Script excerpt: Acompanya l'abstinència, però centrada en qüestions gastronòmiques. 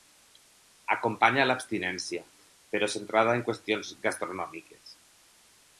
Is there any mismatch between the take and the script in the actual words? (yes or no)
no